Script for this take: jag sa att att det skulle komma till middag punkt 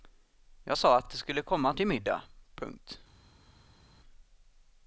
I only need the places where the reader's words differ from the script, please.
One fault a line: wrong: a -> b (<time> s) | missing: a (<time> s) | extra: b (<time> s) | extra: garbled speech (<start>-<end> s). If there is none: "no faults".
no faults